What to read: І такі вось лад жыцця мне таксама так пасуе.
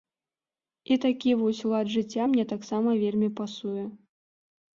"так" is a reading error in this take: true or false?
true